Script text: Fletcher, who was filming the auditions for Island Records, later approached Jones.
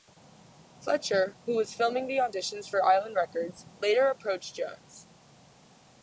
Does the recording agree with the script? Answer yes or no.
yes